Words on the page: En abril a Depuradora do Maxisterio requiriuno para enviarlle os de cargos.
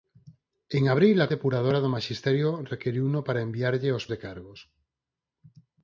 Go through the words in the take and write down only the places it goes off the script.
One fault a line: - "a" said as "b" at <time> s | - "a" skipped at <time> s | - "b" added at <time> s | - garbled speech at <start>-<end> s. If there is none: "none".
none